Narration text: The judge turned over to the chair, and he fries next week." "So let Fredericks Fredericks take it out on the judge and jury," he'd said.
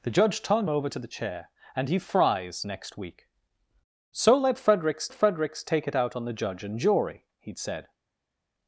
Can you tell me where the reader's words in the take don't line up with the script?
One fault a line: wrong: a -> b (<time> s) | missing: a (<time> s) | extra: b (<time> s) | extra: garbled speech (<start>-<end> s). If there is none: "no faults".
no faults